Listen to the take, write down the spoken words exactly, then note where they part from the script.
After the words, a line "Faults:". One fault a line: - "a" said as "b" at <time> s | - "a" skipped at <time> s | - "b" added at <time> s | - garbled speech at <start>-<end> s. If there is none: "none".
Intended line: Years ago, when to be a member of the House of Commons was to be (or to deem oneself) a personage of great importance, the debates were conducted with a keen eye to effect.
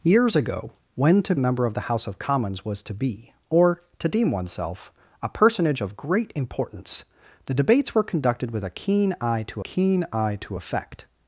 Years ago, when to a member of the House of Commons was to be (or to deem oneself) a personage of great importance, the debates were conducted with a keen eye to keen eye to effect.
Faults:
- "be" skipped at 1.4 s
- "keen eye to" added at 9.6 s